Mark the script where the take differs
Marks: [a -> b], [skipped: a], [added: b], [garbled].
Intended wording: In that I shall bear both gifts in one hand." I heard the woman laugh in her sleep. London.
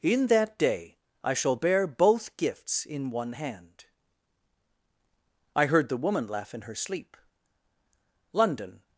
In that [added: day] I shall bear both gifts in one hand." I heard the woman laugh in her sleep. London.